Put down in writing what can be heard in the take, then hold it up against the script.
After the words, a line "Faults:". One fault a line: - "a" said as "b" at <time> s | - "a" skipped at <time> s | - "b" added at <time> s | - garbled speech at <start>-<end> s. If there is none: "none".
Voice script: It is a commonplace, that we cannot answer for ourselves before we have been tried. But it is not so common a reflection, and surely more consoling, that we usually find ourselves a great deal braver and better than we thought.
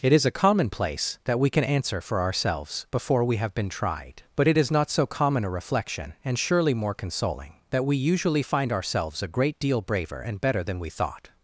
It is a commonplace, that we can answer for ourselves before we have been tried. But it is not so common a reflection, and surely more consoling, that we usually find ourselves a great deal braver and better than we thought.
Faults:
- "cannot" said as "can" at 1.5 s